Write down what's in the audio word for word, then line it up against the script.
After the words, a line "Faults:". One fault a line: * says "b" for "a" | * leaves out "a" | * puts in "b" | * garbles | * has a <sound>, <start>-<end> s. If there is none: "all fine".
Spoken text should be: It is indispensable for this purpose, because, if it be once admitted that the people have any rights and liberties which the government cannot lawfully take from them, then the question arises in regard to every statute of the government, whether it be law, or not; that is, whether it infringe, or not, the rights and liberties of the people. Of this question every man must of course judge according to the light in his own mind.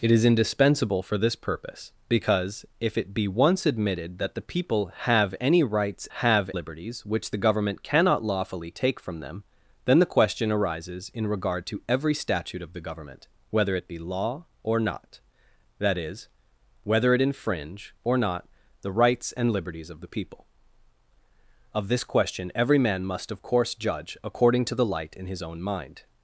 It is indispensable for this purpose, because, if it be once admitted that the people have any rights have liberties which the government cannot lawfully take from them, then the question arises in regard to every statute of the government, whether it be law, or not; that is, whether it infringe, or not, the rights and liberties of the people. Of this question every man must of course judge according to the light in his own mind.
Faults:
* says "have" for "and"